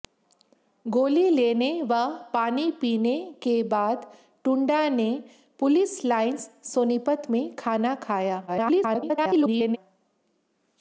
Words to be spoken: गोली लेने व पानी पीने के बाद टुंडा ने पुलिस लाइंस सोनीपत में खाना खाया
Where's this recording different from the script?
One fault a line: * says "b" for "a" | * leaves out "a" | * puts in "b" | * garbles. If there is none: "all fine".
* garbles